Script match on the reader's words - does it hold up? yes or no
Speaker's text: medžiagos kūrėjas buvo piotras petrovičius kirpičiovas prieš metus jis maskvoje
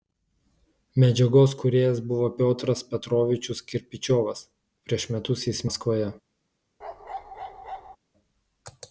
yes